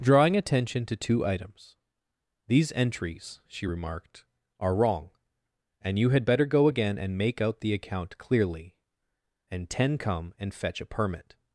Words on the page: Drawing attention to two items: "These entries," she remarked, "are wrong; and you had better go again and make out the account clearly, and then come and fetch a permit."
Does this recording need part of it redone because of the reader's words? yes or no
yes